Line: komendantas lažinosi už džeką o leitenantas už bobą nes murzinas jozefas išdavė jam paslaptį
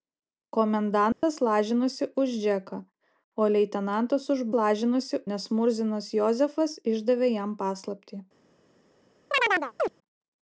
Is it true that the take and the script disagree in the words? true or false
true